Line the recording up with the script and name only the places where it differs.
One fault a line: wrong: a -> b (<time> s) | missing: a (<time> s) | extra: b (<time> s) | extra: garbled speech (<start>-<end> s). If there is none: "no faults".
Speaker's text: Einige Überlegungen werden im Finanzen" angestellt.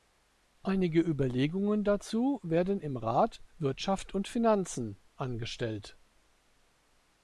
extra: dazu (1.8 s)
extra: Rat Wirtschaft und (3.0 s)